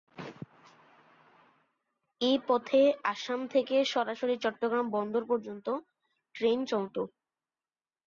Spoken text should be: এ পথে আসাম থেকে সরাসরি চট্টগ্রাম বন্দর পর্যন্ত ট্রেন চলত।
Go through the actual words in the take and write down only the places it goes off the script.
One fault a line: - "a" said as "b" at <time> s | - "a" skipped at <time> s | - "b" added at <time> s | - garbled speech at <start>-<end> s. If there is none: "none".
none